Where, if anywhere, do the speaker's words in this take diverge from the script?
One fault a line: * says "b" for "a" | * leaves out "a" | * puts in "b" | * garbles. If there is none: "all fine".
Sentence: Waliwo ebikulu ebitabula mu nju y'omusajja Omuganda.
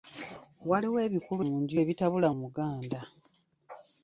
* leaves out "ebitabula"
* says "ebitabula" for "y'omusajja"